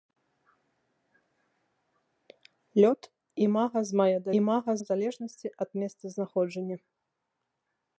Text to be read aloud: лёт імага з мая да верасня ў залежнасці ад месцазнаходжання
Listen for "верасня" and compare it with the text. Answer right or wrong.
wrong